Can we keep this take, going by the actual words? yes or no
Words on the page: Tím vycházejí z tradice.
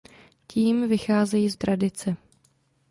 yes